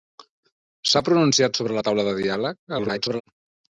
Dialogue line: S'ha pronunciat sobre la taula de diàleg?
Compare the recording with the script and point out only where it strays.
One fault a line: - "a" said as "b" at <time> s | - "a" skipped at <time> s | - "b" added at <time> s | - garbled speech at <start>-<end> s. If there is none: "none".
- garbled speech at 2.7-3.2 s